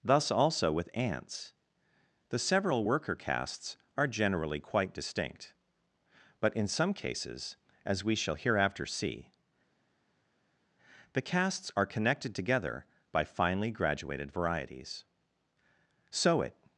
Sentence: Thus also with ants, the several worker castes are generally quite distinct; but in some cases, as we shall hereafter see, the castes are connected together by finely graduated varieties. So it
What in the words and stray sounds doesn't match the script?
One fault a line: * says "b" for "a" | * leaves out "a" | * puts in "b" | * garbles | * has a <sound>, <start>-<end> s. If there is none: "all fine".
all fine